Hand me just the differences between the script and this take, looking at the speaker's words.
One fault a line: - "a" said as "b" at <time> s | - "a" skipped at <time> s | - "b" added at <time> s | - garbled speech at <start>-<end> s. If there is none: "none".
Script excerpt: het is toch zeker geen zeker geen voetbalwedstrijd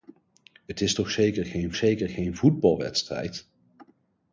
none